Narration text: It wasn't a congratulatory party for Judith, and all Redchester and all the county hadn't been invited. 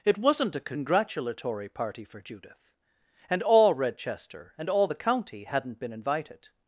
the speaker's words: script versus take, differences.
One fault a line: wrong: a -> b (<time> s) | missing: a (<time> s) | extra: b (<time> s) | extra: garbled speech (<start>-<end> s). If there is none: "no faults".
no faults